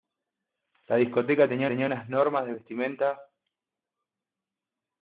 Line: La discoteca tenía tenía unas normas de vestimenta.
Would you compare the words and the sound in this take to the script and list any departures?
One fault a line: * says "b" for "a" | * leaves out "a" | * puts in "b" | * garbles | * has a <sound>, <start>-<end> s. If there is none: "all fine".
all fine